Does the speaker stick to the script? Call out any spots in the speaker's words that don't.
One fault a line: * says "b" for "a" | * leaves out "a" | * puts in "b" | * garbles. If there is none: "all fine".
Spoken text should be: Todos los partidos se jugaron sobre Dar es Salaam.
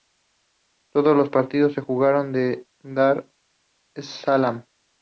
* says "en" for "sobre"